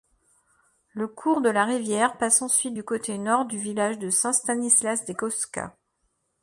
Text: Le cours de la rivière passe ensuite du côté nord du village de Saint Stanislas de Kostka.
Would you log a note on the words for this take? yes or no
no